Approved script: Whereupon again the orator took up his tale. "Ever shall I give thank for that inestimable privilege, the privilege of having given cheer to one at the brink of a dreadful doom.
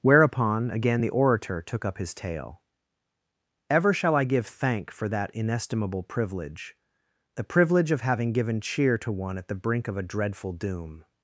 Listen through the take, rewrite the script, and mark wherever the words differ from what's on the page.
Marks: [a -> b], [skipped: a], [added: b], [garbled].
Whereupon again the orator took up his tale. "Ever shall I give thank for that inestimable privilege, the privilege of having given cheer to one at the brink of a dreadful doom.